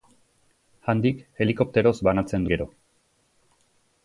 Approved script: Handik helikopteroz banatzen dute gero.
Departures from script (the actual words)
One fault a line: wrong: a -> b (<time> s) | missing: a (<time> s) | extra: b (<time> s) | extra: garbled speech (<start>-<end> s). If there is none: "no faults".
missing: dute (2.5 s)